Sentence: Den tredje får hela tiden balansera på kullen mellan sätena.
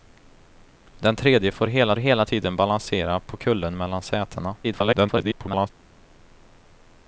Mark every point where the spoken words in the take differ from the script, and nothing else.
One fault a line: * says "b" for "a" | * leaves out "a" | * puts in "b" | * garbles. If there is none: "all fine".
* puts in "hela"
* garbles